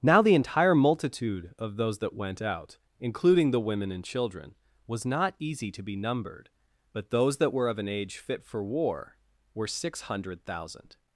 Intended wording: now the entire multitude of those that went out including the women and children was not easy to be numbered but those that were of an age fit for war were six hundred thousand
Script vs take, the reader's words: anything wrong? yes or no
no